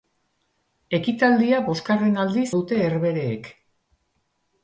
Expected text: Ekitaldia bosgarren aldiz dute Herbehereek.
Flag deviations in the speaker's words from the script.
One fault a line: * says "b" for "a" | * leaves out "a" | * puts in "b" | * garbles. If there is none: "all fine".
all fine